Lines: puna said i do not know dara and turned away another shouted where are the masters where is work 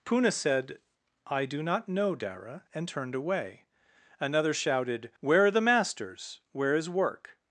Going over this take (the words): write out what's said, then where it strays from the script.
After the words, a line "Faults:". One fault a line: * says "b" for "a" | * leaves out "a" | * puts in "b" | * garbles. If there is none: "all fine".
puna said i do not know dara and turned away another shouted where are the masters where is work
Faults:
all fine